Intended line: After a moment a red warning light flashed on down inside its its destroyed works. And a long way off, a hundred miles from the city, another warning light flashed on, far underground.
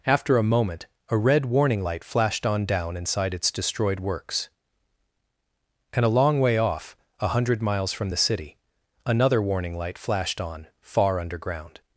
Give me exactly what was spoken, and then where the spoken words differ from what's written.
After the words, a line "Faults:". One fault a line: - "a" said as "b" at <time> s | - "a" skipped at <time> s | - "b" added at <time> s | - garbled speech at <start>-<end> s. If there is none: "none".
After a moment a red warning light flashed on down inside its destroyed works. And a long way off, a hundred miles from the city, another warning light flashed on, far underground.
Faults:
- "its" skipped at 3.5 s